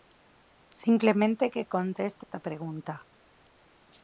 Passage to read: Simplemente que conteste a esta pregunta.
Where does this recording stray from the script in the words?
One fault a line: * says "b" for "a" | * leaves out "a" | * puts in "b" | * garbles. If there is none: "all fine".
* leaves out "a"